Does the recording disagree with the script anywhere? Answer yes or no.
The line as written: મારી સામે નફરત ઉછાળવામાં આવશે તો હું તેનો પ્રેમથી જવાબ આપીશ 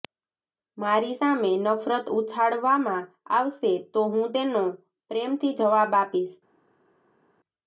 no